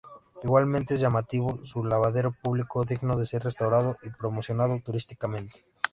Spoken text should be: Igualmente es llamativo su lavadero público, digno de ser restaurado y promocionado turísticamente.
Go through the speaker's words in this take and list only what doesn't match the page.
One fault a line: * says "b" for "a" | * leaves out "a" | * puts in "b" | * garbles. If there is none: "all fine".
all fine